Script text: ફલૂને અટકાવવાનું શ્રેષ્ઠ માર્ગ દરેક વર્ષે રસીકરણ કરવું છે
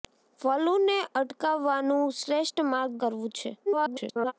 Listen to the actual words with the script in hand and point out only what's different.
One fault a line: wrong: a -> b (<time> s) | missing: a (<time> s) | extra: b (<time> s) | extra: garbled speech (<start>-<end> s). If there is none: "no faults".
missing: દરેક વર્ષે રસીકરણ (3.0 s)
extra: garbled speech (3.7-4.3 s)